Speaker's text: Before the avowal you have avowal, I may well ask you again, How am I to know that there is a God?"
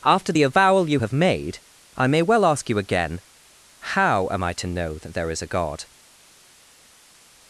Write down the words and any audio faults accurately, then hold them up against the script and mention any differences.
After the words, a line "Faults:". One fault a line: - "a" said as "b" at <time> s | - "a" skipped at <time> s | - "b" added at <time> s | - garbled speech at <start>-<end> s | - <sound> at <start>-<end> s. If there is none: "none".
After the avowal you have made, I may well ask you again, How am I to know that there is a God?"
Faults:
- "Before" said as "After" at 0.0 s
- "avowal" said as "made" at 1.1 s